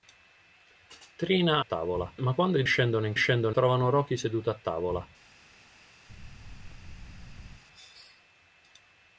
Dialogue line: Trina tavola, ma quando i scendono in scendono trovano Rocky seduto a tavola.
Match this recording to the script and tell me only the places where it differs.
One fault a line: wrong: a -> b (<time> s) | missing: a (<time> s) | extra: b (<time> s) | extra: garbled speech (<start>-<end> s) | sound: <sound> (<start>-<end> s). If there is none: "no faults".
sound: thud (6.1-7.6 s)